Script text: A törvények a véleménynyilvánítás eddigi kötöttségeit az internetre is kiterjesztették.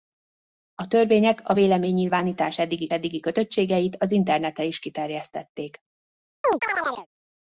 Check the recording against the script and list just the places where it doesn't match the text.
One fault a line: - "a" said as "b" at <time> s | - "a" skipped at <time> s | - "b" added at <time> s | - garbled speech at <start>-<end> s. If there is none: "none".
- "eddigi" added at 2.9 s